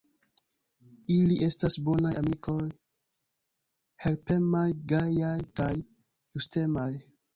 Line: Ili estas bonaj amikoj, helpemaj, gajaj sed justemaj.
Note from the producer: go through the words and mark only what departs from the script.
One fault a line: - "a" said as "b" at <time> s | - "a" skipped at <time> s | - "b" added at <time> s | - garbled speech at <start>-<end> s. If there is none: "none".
- "sed" said as "kaj" at 5.6 s